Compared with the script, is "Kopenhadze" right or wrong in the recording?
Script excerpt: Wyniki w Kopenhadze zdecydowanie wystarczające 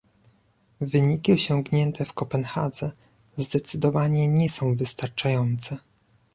right